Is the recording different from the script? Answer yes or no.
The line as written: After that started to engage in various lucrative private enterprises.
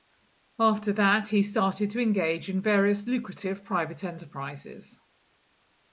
yes